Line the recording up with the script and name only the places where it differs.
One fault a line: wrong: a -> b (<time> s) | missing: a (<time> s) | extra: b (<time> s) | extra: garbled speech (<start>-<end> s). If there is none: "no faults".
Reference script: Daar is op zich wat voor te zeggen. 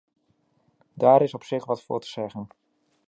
no faults